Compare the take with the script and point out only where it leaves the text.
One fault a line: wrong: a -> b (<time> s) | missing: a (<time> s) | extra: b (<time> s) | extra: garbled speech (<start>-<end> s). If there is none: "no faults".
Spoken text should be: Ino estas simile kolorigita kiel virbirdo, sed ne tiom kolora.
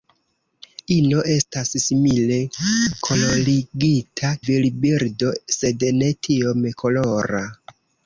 missing: kiel (4.3 s)